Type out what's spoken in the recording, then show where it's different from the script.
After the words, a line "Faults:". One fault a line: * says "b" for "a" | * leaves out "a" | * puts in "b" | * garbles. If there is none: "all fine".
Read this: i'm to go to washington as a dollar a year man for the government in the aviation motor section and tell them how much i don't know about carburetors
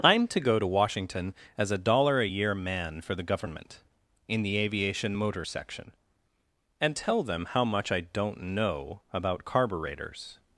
i'm to go to washington as a dollar a year man for the government in the aviation motor section and tell them how much i don't know about carburetors
Faults:
all fine